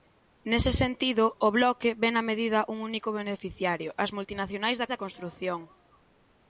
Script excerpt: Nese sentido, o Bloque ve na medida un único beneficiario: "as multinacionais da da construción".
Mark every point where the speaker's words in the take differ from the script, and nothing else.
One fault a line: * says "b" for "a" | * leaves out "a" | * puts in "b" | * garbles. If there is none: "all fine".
all fine